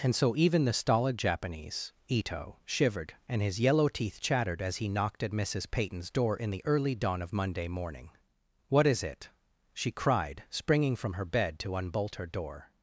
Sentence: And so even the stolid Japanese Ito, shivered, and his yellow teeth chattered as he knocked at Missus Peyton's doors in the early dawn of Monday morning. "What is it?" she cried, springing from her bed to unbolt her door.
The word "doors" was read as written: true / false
false